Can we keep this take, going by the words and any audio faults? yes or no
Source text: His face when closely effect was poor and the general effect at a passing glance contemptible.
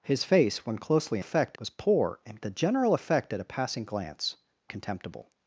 yes